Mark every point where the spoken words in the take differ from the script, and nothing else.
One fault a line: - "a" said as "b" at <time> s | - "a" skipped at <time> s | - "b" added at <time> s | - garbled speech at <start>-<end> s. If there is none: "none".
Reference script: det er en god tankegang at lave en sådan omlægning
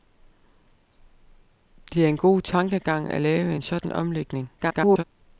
- garbled speech at 4.6-5.0 s